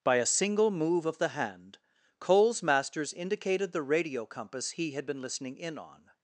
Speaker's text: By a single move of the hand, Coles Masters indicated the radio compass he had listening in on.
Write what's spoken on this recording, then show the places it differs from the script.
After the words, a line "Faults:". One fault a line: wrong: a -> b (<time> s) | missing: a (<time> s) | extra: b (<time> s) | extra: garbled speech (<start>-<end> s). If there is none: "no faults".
By a single move of the hand, Coles Masters indicated the radio compass he had been listening in on.
Faults:
extra: been (5.1 s)